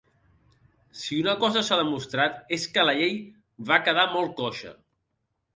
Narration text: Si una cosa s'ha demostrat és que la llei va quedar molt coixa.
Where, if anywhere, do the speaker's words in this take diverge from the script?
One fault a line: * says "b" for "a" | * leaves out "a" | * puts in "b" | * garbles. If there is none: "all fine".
all fine